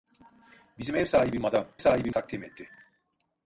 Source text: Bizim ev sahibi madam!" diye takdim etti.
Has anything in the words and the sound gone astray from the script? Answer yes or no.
yes